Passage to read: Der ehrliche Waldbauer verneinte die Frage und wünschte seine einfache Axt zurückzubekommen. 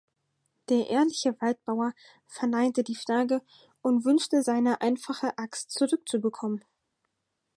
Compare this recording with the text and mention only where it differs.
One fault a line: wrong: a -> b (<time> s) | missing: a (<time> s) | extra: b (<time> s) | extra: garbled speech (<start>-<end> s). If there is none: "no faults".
no faults